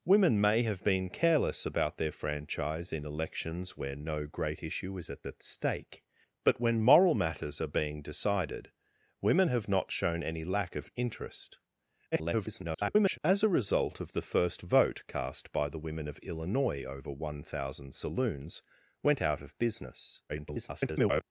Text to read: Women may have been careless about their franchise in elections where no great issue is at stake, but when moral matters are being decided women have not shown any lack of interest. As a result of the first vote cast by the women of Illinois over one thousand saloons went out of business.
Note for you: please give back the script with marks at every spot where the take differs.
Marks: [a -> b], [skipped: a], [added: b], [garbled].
Women may have been careless about their franchise in elections where no great issue is at [added: at] stake, but when moral matters are being decided women have not shown any lack of interest. [garbled] As a result of the first vote cast by the women of Illinois over one thousand saloons went out of business. [garbled]